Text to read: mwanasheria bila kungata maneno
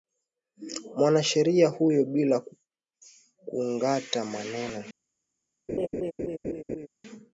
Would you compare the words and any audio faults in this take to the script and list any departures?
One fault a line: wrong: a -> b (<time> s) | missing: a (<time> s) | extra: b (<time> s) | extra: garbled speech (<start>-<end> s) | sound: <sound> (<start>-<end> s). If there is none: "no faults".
extra: huyo (1.7 s)
sound: laugh (5.7-6.9 s)